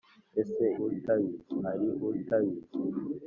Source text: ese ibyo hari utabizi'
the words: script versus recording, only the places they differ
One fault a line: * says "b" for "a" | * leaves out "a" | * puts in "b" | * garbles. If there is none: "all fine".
* says "utabizi" for "ibyo"